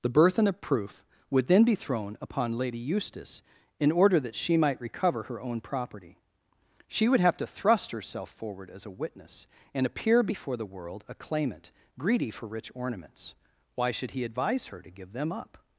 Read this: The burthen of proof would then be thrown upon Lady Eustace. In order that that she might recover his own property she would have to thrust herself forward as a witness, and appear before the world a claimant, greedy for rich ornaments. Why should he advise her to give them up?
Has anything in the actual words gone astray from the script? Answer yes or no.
yes